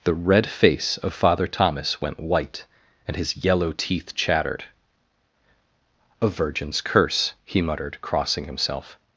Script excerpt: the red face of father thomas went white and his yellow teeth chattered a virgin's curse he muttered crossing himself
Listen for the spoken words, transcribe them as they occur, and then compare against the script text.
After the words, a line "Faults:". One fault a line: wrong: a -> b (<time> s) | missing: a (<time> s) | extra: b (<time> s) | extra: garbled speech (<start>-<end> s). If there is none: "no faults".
the red face of father thomas went white and his yellow teeth chattered a virgin's curse he muttered crossing himself
Faults:
no faults